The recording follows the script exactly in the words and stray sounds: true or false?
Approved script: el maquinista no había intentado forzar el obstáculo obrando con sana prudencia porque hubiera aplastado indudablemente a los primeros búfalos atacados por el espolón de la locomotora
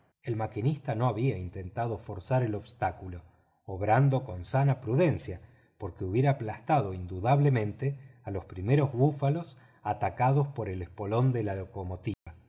false